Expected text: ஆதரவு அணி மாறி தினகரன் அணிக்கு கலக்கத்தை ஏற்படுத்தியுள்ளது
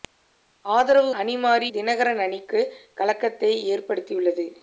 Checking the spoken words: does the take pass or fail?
pass